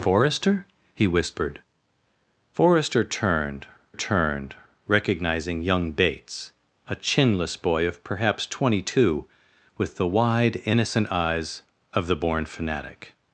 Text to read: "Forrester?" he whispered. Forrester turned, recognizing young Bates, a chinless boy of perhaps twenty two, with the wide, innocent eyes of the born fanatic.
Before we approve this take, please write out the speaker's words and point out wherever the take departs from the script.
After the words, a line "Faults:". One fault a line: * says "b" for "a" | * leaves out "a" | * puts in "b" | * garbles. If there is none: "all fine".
"Forrester?" he whispered. Forrester turned turned, recognizing young Bates, a chinless boy of perhaps twenty two, with the wide, innocent eyes of the born fanatic.
Faults:
* puts in "turned"